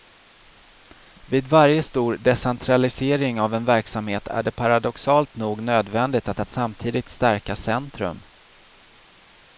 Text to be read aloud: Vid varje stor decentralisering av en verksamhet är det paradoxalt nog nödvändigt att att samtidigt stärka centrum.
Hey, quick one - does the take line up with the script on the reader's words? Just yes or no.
yes